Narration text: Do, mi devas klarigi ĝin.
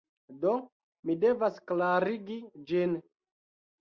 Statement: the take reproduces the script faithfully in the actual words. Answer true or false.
true